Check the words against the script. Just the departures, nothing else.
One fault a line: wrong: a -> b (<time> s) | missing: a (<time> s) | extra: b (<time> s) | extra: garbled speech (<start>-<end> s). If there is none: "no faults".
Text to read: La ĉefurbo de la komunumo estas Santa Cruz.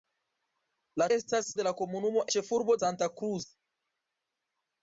wrong: ĉefurbo -> estas (1.2 s)
wrong: estas -> ĉefurbo (2.3 s)